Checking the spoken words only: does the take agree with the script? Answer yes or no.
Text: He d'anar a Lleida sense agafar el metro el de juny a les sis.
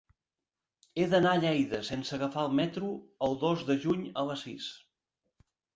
no